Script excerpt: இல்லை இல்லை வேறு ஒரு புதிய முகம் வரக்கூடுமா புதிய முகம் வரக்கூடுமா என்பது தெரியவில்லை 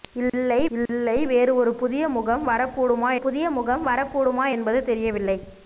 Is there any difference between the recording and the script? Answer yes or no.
no